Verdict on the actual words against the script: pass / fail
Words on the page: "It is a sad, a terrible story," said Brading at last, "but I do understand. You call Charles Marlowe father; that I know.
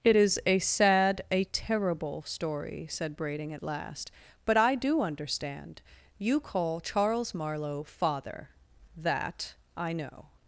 pass